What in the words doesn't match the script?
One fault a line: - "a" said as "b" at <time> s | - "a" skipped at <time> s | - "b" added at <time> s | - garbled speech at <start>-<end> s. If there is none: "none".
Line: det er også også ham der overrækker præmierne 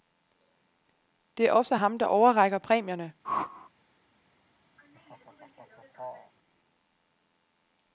- "også" skipped at 1.8 s